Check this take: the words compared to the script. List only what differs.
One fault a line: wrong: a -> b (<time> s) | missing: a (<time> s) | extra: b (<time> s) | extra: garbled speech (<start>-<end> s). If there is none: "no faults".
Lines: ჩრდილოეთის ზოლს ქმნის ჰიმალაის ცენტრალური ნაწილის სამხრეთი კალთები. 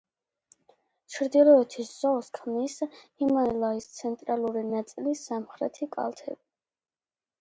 no faults